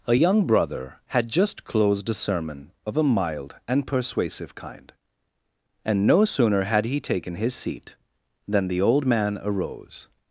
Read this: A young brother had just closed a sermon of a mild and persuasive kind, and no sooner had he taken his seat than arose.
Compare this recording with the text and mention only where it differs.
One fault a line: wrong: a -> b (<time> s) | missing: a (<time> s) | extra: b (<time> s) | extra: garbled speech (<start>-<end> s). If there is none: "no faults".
extra: the old man (8.7 s)